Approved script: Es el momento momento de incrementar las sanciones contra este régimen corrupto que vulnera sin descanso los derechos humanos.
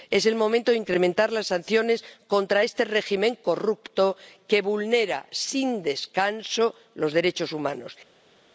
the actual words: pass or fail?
fail